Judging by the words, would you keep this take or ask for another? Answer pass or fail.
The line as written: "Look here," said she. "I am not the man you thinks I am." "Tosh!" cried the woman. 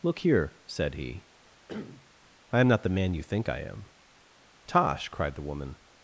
fail